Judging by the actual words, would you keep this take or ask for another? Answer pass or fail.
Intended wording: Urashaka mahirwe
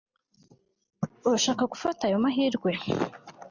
fail